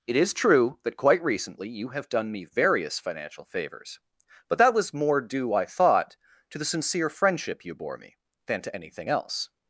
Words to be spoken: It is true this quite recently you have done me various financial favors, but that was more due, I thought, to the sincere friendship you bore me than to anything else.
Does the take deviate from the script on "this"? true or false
true